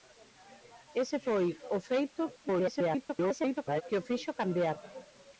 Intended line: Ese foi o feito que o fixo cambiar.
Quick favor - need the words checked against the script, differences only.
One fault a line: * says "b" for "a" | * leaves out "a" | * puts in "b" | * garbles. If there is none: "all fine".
* garbles